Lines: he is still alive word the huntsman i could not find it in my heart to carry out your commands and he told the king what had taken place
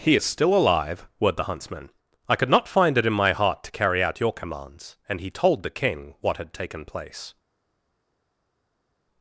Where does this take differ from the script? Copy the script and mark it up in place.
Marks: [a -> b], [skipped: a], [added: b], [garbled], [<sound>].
he is still alive word the huntsman i could not find it in my heart to carry out your commands and he told the king what had taken place